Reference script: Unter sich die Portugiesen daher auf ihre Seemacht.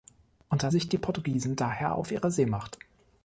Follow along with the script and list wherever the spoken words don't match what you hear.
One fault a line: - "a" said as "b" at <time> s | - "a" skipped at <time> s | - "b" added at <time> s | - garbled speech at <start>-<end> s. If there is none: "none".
none